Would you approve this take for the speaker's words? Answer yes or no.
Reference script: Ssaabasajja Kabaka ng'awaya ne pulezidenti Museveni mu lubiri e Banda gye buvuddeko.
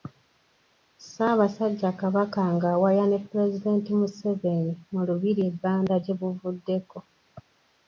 yes